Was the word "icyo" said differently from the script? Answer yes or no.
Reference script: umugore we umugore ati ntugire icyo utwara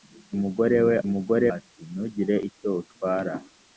no